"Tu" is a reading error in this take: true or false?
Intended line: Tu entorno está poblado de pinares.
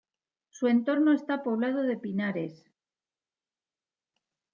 true